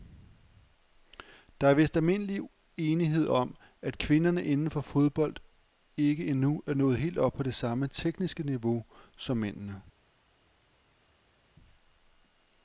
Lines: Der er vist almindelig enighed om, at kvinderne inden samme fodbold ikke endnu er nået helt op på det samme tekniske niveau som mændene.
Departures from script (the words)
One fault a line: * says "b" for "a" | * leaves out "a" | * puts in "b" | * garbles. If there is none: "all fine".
* says "for" for "samme"